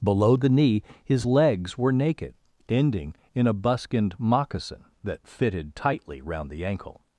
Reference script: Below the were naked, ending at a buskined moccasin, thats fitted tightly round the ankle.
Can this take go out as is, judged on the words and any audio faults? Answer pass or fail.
fail